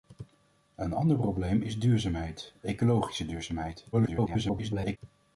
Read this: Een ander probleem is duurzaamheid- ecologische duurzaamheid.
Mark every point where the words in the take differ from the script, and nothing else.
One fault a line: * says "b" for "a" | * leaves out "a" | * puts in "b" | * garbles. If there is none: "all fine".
* garbles